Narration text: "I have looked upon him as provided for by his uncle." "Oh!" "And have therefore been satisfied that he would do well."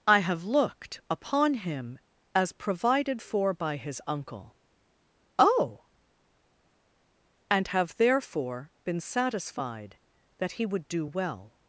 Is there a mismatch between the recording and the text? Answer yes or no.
no